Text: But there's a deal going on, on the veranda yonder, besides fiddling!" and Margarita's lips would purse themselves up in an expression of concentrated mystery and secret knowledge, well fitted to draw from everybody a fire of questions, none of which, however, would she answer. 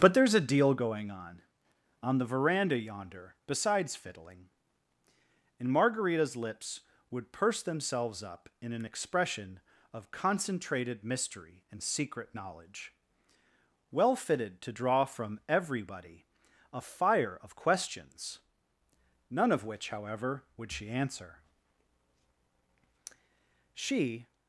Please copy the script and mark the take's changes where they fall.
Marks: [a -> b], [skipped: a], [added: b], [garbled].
But there's a deal going on, on the veranda yonder, besides fiddling!" and Margarita's lips would purse themselves up in an expression of concentrated mystery and secret knowledge, well fitted to draw from everybody a fire of questions, none of which, however, would she answer. [added: She]